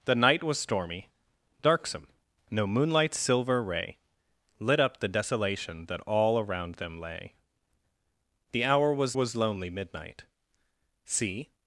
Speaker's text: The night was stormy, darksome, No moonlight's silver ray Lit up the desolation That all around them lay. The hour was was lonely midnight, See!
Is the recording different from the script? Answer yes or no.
no